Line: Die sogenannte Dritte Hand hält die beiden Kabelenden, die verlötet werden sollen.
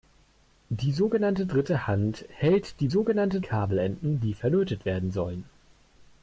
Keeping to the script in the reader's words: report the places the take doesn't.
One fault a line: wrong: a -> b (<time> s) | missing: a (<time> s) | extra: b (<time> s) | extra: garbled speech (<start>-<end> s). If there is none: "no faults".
wrong: beiden -> sogenannte (2.9 s)